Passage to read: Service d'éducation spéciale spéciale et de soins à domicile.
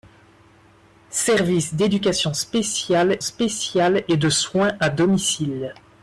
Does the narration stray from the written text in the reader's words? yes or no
no